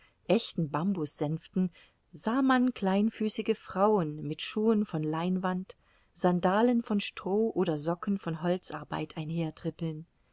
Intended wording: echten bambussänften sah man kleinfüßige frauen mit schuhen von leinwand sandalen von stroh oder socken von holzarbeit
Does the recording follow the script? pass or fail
pass